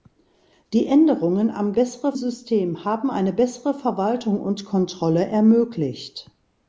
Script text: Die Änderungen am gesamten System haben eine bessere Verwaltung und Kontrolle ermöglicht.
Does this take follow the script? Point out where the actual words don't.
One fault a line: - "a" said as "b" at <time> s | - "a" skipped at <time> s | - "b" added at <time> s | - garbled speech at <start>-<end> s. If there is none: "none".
- "gesamten" said as "bessere" at 1.7 s